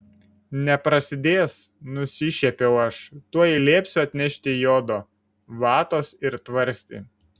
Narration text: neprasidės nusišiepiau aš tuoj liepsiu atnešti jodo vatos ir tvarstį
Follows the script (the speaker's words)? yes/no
yes